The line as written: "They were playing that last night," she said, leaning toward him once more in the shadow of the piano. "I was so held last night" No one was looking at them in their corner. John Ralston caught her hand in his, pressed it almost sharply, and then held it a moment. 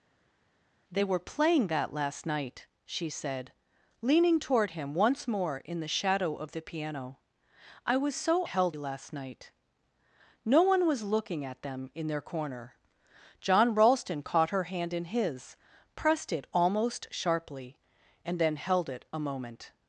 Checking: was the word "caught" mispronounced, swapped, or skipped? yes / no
no